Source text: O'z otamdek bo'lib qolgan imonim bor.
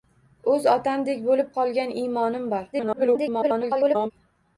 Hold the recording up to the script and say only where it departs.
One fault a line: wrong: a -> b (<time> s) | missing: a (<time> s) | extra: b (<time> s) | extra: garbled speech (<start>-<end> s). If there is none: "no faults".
extra: garbled speech (2.7-4.1 s)